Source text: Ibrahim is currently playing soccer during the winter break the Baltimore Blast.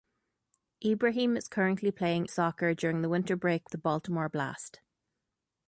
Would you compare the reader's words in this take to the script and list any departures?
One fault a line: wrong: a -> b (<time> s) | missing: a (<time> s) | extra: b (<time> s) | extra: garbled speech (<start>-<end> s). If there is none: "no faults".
no faults